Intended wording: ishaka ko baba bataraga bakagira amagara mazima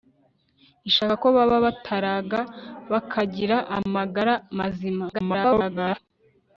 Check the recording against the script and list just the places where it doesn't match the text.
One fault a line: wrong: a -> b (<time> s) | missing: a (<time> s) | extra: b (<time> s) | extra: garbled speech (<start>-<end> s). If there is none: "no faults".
extra: garbled speech (5.1-6.0 s)